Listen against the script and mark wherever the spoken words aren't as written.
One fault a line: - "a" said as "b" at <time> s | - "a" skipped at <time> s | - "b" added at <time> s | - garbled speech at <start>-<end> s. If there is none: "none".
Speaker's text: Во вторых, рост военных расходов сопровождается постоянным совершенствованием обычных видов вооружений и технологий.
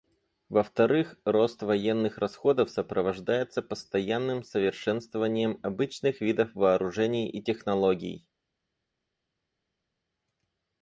none